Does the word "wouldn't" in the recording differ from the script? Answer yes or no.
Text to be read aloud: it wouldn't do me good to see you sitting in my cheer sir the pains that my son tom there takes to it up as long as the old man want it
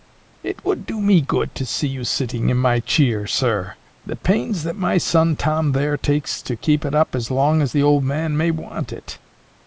yes